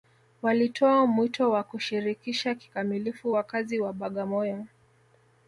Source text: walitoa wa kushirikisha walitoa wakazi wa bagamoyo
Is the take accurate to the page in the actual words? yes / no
no